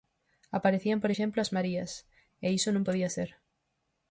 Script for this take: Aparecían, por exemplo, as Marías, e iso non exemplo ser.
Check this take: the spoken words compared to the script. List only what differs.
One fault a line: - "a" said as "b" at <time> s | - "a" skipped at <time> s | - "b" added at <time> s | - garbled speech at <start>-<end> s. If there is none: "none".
- "exemplo" said as "podía" at 2.9 s